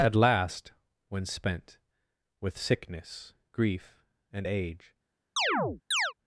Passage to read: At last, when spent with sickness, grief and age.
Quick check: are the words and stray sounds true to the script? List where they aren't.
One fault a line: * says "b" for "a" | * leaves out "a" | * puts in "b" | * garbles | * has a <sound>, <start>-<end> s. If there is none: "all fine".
* has a chirp, 5.4-6.1 s